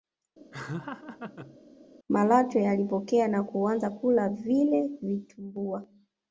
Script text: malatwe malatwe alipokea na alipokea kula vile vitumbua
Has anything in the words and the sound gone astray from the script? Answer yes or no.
yes